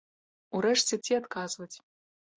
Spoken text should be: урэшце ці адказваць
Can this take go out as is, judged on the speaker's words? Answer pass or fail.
pass